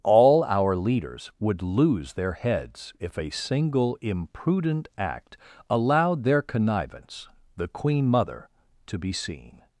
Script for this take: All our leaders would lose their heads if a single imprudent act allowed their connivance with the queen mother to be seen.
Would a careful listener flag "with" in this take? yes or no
yes